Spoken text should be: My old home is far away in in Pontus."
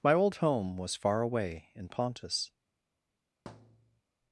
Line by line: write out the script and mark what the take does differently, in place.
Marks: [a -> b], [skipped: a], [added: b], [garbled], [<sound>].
My old home [is -> was] far away in [skipped: in] Pontus." [thud]